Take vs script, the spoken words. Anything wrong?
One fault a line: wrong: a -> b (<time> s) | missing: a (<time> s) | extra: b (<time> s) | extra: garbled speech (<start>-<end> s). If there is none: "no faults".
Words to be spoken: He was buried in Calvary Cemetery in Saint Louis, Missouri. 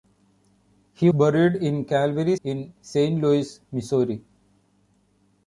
missing: was (1.1 s)
missing: Cemetery (2.4 s)